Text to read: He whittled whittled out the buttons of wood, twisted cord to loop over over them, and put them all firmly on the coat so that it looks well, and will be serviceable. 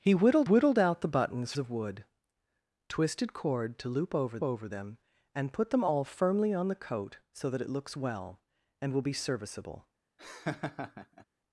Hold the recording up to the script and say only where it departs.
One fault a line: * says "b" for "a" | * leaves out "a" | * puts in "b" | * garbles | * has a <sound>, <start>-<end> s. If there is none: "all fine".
* has a laugh, 10.2-11.3 s